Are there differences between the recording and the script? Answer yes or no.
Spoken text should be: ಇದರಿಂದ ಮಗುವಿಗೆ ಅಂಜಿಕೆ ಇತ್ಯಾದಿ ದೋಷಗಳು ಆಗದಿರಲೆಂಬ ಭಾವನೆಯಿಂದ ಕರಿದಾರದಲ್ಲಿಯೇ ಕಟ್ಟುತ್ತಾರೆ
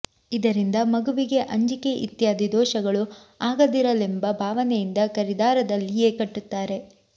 no